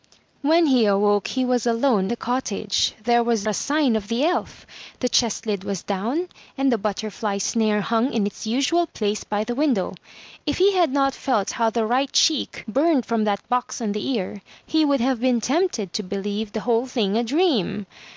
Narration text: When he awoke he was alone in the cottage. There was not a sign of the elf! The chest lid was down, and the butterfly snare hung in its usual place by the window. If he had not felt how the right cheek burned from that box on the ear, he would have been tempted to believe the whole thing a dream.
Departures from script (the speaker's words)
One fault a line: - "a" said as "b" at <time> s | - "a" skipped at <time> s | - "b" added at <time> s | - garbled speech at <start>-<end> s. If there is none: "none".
- "in" skipped at 2.1 s
- "not" skipped at 3.5 s